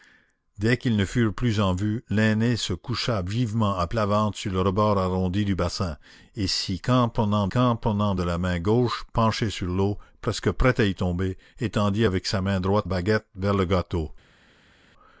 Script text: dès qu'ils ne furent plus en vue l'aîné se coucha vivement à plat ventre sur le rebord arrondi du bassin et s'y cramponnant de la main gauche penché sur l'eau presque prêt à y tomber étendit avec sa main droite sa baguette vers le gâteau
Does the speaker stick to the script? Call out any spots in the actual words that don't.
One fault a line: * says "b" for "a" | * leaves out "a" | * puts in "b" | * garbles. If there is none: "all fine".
* puts in "cramponnant"
* leaves out "sa"